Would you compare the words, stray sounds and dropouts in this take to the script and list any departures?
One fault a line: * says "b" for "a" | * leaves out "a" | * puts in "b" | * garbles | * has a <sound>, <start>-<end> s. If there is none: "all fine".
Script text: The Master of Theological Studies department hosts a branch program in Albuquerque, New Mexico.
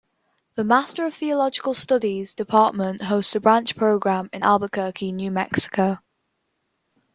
all fine